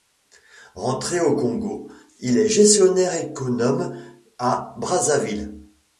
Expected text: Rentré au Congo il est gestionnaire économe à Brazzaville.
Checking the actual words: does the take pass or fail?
pass